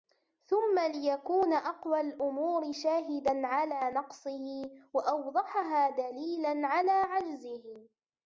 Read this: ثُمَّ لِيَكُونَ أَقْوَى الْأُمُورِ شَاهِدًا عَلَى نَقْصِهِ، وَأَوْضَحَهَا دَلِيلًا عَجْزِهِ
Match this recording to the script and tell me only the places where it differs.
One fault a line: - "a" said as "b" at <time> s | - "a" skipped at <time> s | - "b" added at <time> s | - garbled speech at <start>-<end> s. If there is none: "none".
- "عَلَى" added at 6.7 s